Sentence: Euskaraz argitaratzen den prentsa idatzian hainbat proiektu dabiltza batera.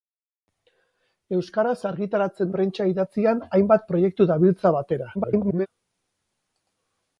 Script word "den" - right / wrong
wrong